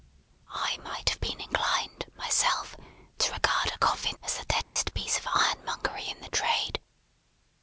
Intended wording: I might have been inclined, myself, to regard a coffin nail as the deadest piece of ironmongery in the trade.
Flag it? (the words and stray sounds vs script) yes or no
yes